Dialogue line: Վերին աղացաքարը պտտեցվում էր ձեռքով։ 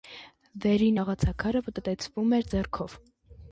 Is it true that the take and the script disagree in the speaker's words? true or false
false